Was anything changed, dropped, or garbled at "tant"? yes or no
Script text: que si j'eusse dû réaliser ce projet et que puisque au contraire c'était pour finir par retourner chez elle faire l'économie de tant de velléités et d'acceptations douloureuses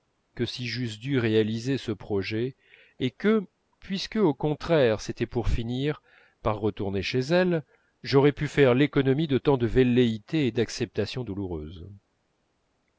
no